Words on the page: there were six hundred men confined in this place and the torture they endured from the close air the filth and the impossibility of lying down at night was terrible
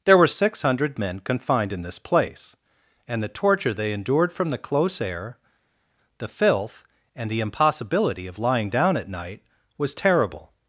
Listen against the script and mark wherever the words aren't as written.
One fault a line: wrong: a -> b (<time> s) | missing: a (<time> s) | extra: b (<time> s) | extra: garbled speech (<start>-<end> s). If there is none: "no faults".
no faults